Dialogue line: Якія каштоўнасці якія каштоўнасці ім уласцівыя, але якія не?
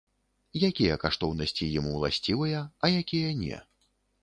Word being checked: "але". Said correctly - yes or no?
no